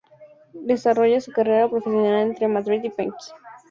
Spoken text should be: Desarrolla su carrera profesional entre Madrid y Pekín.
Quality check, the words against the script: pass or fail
pass